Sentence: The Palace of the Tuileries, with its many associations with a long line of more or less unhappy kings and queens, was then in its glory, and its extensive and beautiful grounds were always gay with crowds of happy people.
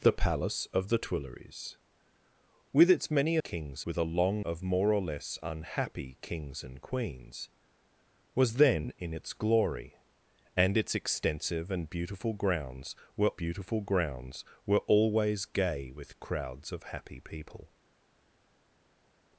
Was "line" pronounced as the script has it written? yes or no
no